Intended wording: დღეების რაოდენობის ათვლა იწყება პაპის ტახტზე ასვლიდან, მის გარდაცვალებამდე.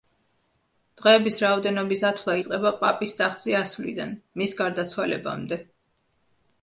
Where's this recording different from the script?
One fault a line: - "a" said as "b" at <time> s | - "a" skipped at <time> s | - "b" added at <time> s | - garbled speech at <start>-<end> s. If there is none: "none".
none